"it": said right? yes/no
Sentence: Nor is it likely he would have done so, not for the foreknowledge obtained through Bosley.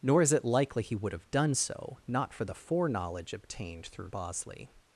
yes